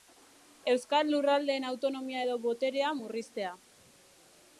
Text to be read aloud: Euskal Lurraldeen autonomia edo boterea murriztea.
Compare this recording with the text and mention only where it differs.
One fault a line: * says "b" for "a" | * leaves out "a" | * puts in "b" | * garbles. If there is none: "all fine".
all fine